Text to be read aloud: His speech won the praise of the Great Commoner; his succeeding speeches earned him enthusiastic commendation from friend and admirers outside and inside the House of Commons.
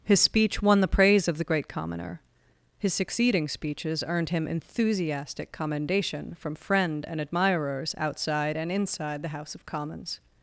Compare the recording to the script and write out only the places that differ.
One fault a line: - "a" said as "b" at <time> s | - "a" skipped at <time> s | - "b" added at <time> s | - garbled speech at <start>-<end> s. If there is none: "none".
none